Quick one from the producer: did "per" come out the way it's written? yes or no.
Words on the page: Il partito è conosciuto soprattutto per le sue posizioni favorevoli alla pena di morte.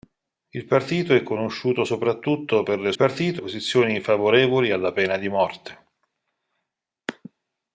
yes